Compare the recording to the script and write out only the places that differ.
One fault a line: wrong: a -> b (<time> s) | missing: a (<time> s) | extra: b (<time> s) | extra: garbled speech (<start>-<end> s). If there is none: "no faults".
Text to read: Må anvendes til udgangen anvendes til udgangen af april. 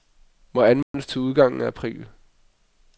missing: anvendes til udgangen (1.6 s)